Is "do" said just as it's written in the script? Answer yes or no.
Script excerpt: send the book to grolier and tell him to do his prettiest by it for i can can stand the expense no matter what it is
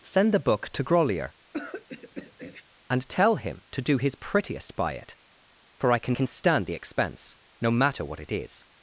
yes